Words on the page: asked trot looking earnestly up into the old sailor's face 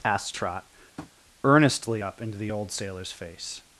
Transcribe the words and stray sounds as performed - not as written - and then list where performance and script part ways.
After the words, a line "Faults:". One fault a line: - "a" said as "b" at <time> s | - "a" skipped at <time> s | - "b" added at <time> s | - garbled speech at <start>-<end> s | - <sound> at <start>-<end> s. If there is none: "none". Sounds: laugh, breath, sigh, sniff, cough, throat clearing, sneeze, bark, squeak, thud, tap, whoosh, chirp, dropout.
asked trot earnestly up into the old sailor's face
Faults:
- "looking" skipped at 0.6 s
- tap at 1.0-1.1 s